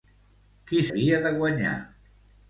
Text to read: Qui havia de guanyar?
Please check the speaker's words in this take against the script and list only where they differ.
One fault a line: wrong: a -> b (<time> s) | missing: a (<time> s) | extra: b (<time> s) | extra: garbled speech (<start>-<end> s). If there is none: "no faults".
no faults